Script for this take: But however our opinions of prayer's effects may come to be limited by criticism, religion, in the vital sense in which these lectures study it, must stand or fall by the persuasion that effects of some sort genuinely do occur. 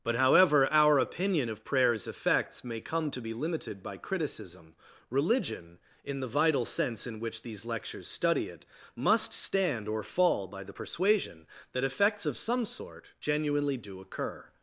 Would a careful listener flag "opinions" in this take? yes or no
yes